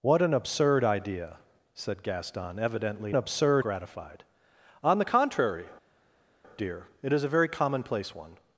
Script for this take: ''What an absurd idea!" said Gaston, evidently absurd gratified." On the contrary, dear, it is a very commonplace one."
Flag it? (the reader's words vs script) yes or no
no